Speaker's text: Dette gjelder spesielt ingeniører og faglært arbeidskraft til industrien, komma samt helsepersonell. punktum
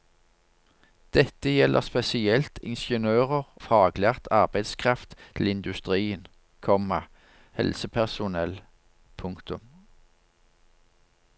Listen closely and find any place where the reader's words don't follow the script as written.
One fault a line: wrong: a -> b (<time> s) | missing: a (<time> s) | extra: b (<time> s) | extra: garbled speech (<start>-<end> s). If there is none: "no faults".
missing: og (3.4 s)
missing: samt (7.0 s)